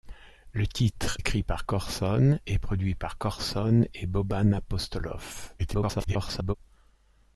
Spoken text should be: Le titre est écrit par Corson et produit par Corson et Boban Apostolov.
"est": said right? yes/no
no